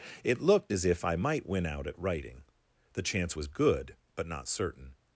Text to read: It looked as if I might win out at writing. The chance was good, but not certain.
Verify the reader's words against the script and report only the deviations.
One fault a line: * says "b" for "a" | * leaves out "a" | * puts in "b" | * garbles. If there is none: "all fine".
all fine